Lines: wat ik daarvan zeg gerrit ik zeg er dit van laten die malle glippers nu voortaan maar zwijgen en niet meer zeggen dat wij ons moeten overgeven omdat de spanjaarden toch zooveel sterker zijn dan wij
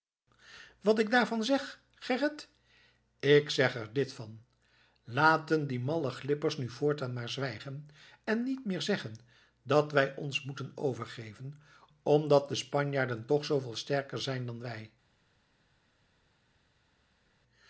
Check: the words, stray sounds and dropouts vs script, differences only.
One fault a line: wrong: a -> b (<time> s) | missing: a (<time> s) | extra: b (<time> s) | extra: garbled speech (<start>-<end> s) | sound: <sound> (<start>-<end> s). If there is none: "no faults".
no faults